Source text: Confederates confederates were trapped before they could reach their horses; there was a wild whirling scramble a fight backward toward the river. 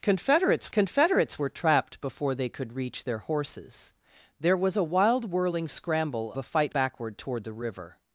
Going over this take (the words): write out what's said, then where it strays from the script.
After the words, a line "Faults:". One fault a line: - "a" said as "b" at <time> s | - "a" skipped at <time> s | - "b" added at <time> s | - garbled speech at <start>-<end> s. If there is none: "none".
Confederates confederates were trapped before they could reach their horses; there was a wild whirling scramble a fight backward toward the river.
Faults:
none